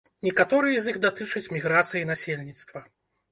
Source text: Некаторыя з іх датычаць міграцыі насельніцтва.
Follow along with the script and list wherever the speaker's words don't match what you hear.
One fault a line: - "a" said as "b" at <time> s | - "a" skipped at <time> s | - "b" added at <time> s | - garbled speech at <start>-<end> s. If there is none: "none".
none